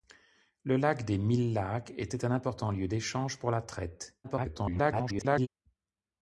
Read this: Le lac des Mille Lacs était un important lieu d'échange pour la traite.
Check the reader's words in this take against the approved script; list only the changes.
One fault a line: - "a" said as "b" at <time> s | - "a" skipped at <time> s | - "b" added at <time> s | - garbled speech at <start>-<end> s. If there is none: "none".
- garbled speech at 4.2-5.5 s